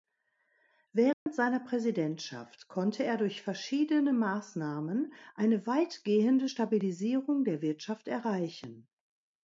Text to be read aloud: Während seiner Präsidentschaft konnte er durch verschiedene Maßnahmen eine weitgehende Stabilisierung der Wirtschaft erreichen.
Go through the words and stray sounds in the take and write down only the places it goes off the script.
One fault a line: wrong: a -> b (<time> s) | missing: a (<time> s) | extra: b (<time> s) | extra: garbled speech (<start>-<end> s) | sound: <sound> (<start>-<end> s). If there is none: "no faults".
sound: dropout (1.1-1.3 s)